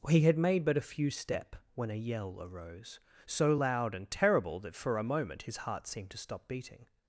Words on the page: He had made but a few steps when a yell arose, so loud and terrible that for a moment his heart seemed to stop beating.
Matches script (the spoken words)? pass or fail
fail